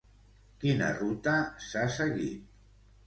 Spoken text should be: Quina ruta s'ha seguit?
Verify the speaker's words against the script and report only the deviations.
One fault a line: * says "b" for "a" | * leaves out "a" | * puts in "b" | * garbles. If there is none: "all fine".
all fine